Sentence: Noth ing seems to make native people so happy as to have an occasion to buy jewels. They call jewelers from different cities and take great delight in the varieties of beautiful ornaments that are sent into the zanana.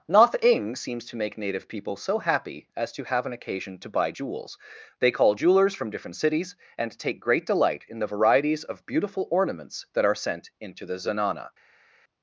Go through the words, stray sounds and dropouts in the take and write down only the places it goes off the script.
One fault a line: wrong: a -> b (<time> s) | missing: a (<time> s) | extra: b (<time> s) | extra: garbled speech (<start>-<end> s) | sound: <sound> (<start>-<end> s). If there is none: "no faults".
no faults